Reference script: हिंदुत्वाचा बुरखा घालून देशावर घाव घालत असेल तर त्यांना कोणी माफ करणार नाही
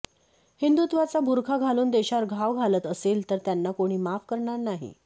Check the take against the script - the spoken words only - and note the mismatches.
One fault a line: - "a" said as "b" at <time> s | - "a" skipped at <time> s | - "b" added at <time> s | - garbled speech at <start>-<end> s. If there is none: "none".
none